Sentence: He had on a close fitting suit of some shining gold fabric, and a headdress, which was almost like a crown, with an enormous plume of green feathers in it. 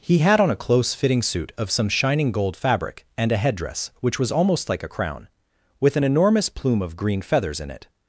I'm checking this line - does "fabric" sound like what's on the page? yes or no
yes